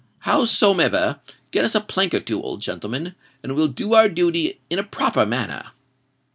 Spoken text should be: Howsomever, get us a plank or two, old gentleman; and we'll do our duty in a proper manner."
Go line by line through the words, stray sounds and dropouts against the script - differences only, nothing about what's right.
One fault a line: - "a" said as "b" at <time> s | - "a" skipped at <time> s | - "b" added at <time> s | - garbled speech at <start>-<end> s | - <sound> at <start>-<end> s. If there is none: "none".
none